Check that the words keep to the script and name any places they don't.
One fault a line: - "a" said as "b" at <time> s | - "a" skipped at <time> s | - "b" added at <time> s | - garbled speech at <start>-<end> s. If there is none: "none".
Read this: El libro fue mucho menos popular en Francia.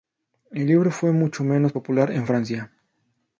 none